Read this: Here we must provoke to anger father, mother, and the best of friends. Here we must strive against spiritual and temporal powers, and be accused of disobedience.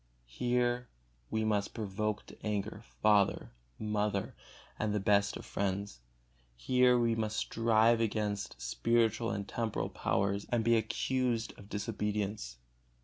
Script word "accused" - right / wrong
right